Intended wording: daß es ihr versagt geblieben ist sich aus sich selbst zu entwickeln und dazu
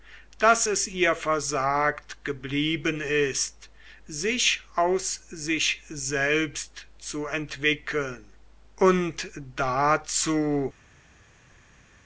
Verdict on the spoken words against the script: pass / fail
pass